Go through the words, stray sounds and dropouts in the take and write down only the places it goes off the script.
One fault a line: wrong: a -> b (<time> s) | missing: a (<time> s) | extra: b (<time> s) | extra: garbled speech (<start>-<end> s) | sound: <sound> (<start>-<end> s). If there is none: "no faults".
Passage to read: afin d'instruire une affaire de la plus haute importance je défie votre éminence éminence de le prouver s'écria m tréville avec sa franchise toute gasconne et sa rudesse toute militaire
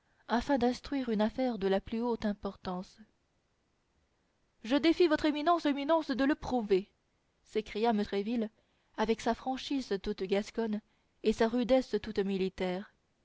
no faults